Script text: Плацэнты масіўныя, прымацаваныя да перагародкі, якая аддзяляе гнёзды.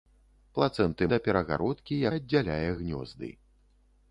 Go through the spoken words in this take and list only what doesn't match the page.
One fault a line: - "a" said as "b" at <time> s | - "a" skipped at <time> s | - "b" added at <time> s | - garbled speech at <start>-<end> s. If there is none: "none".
- "масіўныя прымацаваныя" skipped at 1.1 s
- "якая" skipped at 1.9 s